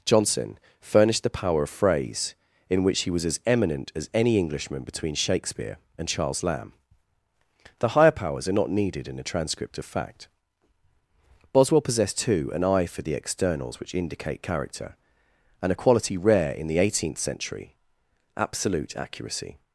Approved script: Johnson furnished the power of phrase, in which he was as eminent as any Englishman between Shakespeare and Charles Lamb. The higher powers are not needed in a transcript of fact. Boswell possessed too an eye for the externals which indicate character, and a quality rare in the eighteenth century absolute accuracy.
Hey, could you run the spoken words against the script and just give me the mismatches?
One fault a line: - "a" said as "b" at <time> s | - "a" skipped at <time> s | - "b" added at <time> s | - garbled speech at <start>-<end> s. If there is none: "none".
none